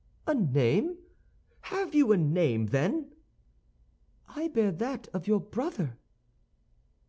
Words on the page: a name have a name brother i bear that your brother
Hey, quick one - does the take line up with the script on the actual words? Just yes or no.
no